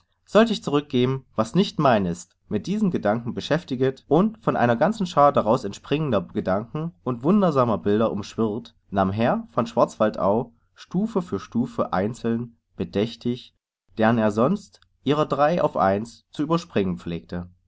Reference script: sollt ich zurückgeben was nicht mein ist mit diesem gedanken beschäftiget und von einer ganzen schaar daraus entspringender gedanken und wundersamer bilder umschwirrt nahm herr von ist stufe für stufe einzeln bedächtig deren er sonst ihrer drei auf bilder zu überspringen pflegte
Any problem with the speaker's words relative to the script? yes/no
yes